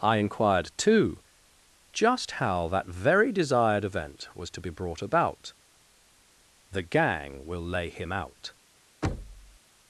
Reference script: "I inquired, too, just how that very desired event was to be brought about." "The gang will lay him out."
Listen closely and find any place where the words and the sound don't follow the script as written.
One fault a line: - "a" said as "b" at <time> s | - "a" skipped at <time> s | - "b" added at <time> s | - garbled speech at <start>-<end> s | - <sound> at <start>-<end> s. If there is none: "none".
- thud at 9.0-9.6 s